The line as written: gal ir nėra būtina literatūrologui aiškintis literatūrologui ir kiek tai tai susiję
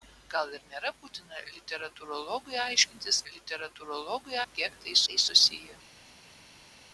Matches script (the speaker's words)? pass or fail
pass